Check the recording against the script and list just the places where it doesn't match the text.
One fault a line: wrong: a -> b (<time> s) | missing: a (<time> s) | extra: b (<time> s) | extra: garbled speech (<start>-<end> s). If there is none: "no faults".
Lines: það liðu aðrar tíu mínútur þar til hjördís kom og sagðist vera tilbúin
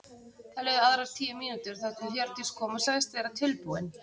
no faults